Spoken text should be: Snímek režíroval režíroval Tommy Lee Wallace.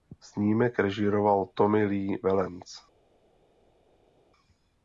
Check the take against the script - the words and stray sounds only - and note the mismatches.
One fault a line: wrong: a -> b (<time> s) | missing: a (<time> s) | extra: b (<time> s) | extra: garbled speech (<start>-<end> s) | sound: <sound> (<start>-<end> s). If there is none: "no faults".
missing: režíroval (1.4 s)